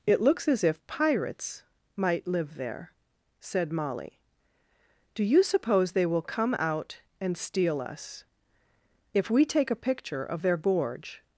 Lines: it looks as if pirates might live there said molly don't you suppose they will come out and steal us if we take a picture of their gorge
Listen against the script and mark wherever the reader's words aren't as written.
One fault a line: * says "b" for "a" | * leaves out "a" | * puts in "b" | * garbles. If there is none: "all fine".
* says "do" for "don't"